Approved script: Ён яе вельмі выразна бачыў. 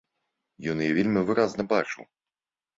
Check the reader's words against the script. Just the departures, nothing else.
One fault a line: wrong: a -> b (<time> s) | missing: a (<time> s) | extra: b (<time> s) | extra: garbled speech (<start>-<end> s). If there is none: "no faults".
no faults